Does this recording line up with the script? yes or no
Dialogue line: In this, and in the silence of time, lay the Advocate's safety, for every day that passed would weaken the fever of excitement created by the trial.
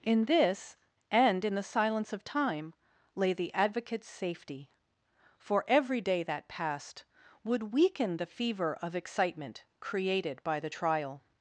yes